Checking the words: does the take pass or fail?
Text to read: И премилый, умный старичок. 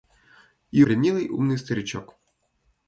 pass